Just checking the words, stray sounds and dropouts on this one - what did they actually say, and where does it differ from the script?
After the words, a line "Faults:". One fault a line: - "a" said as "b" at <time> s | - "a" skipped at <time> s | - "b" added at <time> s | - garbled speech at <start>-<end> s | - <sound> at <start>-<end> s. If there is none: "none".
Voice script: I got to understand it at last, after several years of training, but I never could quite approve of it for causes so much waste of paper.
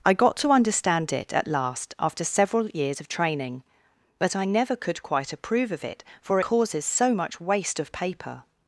I got to understand it at last, after several years of training, but I never could quite approve of it for causes so much waste of paper.
Faults:
none